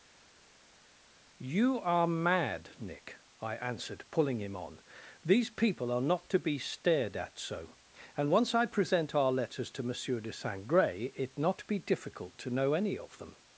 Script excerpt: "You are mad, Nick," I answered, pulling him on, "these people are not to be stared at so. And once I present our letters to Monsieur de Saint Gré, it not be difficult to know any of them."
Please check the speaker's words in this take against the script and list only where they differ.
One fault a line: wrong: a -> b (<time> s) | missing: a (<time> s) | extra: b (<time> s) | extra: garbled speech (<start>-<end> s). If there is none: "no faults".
no faults